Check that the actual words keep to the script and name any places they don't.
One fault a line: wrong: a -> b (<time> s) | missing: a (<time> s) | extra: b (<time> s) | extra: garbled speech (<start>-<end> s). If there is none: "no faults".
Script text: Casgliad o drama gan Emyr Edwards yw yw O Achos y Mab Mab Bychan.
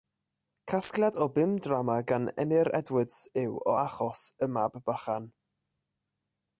extra: bum (1.4 s)
missing: yw (3.6 s)
missing: Mab (4.8 s)